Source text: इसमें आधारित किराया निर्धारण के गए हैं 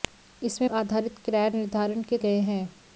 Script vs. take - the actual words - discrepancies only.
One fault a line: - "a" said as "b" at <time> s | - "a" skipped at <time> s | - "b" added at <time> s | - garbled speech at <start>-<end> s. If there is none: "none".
none